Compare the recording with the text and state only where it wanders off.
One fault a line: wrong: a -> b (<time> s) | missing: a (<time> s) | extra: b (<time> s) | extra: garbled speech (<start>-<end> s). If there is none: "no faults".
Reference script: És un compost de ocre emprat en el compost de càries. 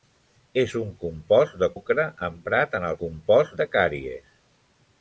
no faults